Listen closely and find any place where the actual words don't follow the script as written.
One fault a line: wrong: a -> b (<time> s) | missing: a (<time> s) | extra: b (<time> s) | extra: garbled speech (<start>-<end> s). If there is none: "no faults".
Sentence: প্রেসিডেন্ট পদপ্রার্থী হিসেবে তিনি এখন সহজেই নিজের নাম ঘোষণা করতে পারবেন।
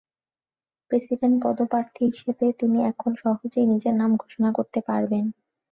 no faults